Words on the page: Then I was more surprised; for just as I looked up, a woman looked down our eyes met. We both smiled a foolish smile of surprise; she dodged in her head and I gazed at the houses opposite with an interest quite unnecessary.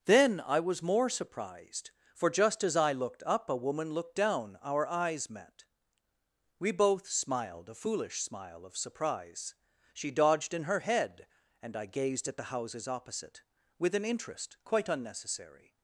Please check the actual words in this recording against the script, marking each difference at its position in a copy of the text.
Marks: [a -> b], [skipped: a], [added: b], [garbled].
Then I was more surprised; for just as I looked up, a woman looked down our eyes met. We both smiled a foolish smile of surprise; she dodged in her head and I gazed at the houses opposite with an interest quite unnecessary.